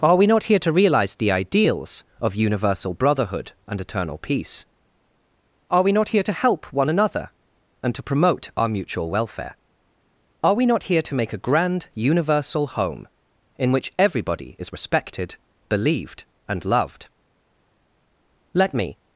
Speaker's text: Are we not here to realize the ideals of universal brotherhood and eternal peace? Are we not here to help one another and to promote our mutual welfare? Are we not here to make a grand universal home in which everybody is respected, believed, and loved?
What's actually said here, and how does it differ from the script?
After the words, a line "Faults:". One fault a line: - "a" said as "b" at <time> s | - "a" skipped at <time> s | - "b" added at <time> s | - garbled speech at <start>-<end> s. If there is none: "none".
Are we not here to realize the ideals of universal brotherhood and eternal peace? Are we not here to help one another and to promote our mutual welfare? Are we not here to make a grand universal home in which everybody is respected, believed, and loved? Let me
Faults:
- "Let me" added at 18.5 s